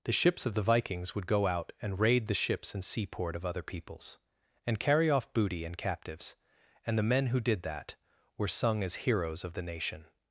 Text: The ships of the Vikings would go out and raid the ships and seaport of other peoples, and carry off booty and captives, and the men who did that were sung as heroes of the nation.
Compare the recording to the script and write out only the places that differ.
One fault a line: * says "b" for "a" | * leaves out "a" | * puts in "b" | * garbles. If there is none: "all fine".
all fine